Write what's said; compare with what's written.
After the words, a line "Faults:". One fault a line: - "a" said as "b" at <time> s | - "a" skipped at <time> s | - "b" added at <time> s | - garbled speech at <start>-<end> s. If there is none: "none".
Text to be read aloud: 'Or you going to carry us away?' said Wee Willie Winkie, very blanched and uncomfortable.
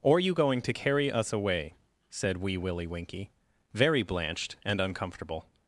'Or you going to carry us away?' said Wee Willie Winkie, very blanched and uncomfortable.
Faults:
none